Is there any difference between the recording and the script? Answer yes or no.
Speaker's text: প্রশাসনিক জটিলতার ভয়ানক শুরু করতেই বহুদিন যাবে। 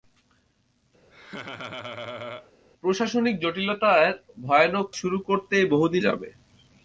no